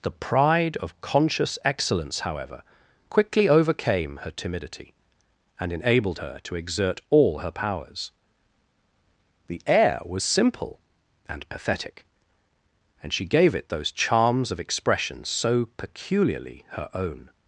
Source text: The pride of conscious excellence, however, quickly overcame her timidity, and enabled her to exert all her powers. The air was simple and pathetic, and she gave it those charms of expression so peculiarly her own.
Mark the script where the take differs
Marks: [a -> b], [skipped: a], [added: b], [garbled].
The pride of conscious excellence, however, quickly overcame her timidity, and enabled her to exert all her powers. The air was simple and pathetic, and she gave it those charms of expression so peculiarly her own.